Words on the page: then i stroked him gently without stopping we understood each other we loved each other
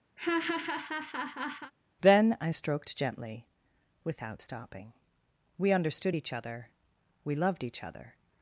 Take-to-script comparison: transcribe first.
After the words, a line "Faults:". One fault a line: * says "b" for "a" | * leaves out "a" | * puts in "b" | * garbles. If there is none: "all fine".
then i stroked gently without stopping we understood each other we loved each other
Faults:
* leaves out "him"